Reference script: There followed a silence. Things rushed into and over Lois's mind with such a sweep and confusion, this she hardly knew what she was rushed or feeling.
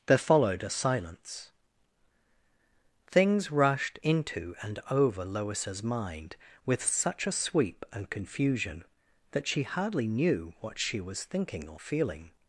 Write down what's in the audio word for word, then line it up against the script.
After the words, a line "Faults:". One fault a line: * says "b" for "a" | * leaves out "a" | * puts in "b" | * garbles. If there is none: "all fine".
There followed a silence. Things rushed into and over Lois's mind with such a sweep and confusion, that she hardly knew what she was thinking or feeling.
Faults:
* says "that" for "this"
* says "thinking" for "rushed"